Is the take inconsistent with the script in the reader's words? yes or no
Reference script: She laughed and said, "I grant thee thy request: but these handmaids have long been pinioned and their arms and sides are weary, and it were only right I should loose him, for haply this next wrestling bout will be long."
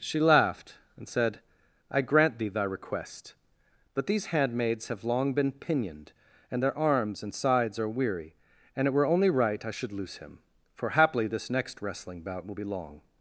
no